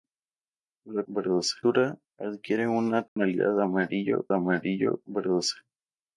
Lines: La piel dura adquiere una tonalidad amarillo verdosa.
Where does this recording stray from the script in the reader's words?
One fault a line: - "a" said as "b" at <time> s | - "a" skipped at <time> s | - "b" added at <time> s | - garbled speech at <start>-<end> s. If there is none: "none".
- "piel" said as "verdosa" at 1.1 s
- "amarillo" added at 4.3 s